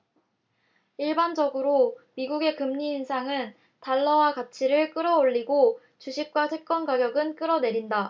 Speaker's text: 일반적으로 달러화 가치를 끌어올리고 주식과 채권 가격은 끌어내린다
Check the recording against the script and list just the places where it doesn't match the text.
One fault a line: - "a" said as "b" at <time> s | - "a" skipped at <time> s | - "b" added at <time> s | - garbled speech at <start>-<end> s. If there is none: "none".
- "미국의 금리 인상은" added at 2.1 s